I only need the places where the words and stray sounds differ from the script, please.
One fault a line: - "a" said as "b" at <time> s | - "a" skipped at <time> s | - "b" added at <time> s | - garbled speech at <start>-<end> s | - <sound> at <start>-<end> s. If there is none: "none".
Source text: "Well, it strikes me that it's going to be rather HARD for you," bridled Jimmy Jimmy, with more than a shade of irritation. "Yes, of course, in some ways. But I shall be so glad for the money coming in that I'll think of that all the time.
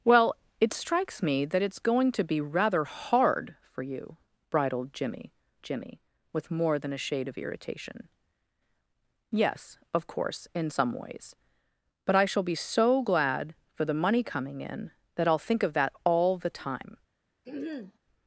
- throat clearing at 17.4-18.0 s